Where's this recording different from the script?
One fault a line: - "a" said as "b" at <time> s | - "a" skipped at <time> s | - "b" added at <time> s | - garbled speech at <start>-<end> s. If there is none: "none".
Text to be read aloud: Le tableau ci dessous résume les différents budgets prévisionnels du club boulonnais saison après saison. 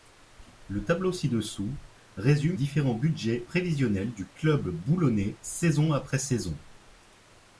- "les" skipped at 2.6 s